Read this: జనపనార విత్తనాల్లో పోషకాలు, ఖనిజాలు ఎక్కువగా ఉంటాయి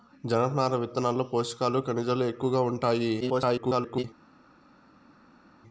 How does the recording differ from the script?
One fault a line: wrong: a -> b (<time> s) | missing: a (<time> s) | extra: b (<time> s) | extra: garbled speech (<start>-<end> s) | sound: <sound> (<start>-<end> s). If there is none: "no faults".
extra: garbled speech (3.2-4.0 s)